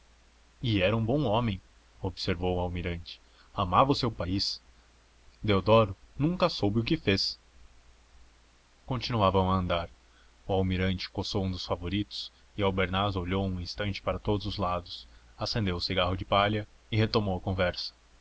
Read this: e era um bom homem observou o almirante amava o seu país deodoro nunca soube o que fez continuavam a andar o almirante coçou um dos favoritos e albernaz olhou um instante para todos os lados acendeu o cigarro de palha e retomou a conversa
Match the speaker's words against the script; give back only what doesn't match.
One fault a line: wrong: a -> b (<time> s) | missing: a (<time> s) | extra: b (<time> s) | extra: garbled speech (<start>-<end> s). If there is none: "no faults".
no faults